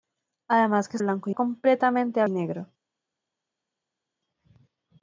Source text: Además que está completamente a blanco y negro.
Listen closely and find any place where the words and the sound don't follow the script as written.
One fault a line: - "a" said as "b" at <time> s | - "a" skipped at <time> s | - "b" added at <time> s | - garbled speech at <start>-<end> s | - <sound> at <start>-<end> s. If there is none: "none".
- "está" said as "blanco" at 1.0 s
- "blanco" skipped at 2.3 s